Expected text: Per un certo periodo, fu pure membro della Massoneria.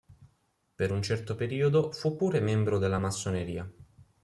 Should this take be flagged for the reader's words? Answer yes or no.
no